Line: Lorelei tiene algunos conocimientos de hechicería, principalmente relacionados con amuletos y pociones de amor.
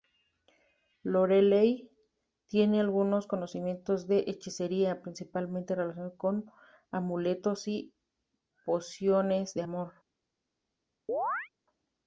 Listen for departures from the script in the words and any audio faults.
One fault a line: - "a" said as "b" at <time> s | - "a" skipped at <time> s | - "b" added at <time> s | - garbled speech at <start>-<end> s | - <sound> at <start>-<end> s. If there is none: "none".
- chirp at 11.1-11.5 s